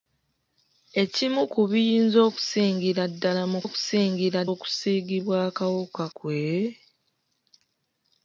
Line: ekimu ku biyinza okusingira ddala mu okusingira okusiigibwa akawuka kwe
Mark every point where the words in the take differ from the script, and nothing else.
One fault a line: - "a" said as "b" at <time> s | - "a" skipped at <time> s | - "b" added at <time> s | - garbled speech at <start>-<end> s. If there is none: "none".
none